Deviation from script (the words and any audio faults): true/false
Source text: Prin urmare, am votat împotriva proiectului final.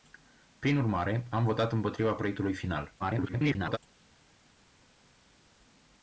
true